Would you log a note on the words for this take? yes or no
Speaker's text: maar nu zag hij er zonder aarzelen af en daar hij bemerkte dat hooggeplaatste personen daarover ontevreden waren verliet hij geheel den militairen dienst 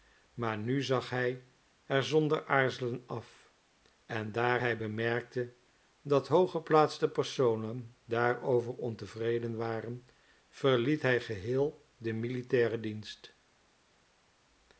no